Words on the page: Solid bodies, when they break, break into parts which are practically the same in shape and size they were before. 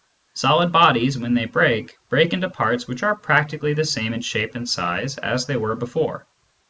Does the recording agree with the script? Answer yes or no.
no